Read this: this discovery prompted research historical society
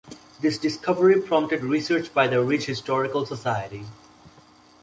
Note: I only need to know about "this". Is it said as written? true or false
true